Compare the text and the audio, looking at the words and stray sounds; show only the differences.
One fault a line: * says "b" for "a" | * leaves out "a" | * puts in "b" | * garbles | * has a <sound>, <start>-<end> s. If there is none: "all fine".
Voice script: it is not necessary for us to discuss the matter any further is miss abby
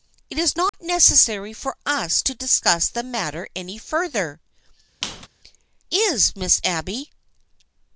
* has a dropout, 0.7-0.7 s
* has a squeak, 5.0-5.3 s